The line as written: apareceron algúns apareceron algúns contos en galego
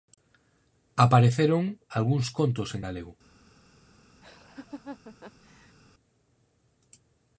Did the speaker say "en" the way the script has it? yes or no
yes